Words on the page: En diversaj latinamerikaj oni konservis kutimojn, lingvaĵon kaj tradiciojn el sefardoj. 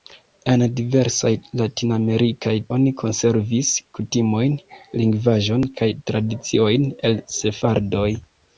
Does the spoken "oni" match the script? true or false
true